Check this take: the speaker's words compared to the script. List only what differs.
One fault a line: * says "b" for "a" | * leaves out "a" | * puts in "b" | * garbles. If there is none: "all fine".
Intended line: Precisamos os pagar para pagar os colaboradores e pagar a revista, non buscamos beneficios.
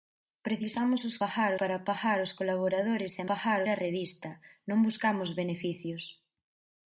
all fine